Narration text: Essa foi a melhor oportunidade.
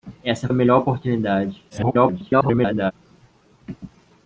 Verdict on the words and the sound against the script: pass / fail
fail